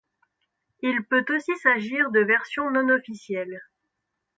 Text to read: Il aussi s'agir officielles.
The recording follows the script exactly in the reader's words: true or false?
false